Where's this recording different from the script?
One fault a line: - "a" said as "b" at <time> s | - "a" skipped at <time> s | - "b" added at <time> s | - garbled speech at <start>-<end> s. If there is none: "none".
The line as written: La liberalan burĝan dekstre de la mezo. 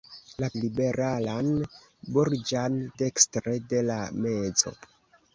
none